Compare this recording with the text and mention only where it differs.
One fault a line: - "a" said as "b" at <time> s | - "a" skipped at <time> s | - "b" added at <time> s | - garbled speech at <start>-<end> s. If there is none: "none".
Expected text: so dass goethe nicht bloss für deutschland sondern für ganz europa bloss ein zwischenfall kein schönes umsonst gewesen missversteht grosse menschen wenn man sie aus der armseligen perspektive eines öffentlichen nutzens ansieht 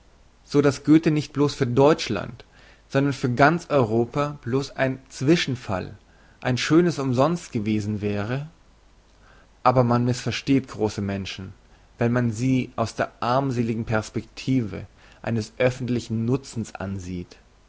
- "kein" said as "ein" at 6.4 s
- "wäre aber man" added at 8.0 s